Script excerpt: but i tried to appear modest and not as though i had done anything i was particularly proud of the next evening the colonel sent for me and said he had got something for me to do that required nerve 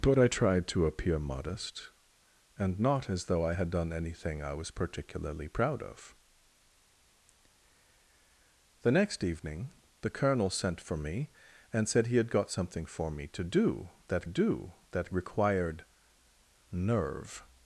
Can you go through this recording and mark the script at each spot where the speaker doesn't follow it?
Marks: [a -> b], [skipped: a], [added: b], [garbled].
but i tried to appear modest and not as though i had done anything i was particularly proud of the next evening the colonel sent for me and said he had got something for me to do that [added: do that] required nerve